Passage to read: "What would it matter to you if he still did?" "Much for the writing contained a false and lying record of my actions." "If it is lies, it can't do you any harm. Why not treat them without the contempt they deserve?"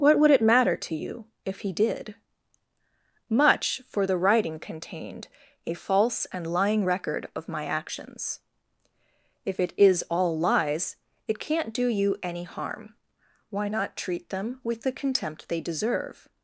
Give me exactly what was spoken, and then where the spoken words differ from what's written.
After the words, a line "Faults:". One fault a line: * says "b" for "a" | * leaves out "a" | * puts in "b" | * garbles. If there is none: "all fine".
"What would it matter to you if he did?" "Much for the writing contained a false and lying record of my actions." "If it is all lies, it can't do you any harm. Why not treat them with the contempt they deserve?"
Faults:
* leaves out "still"
* puts in "all"
* says "with" for "without"